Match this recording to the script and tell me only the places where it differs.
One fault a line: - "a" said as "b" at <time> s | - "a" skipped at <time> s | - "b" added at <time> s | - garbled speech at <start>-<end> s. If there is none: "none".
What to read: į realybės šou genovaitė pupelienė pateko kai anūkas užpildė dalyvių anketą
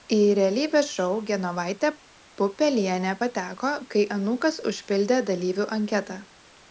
none